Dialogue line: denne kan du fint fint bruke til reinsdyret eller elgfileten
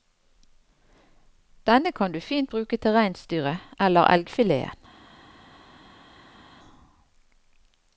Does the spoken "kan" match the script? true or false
true